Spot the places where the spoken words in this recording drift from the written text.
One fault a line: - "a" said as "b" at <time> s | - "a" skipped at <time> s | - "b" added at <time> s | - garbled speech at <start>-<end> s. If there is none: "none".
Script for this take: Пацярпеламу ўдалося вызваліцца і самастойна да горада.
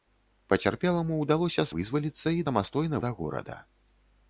none